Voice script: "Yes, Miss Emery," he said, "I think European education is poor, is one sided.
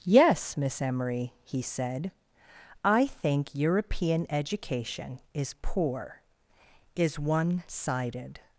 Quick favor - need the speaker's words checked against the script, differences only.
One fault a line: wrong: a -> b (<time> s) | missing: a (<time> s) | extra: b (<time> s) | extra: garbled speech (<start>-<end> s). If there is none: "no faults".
no faults